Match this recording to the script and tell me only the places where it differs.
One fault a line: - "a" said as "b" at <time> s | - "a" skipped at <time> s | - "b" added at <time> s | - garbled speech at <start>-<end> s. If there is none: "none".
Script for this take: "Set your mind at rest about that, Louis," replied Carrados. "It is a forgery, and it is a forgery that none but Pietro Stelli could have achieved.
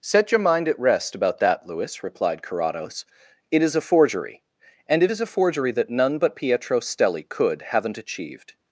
- "have" said as "haven't" at 7.6 s